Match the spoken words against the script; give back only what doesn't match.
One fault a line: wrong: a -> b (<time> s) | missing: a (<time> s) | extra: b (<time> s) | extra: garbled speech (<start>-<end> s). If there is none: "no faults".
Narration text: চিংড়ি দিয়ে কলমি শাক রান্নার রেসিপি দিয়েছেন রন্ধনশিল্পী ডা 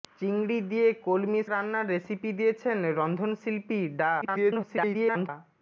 missing: শাক (1.4 s)
extra: garbled speech (4.2-5.3 s)